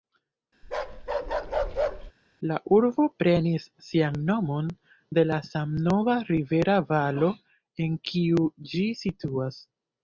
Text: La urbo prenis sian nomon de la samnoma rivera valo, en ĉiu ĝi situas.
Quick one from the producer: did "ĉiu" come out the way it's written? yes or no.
no